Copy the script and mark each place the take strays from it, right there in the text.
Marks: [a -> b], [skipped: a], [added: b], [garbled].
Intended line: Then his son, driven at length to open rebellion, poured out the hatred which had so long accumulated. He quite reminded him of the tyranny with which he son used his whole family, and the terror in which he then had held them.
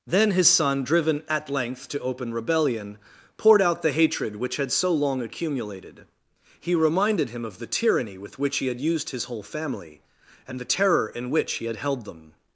Then his son, driven at length to open rebellion, poured out the hatred which had so long accumulated. He [skipped: quite] reminded him of the tyranny with which he [son -> had] used his whole family, and the terror in which he [skipped: then] had held them.